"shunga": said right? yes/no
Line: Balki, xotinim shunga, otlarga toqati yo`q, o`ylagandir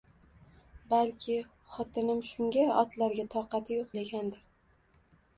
yes